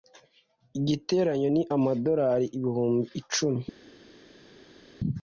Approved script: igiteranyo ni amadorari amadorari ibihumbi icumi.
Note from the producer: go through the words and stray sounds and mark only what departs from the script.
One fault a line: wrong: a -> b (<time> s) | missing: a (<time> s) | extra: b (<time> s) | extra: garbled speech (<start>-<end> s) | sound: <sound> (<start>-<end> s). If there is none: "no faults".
missing: amadorari (2.5 s)